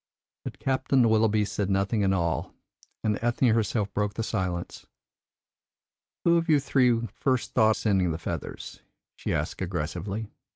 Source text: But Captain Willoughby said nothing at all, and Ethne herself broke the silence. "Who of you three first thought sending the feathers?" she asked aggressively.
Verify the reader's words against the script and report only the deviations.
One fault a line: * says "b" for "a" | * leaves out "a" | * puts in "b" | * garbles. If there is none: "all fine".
all fine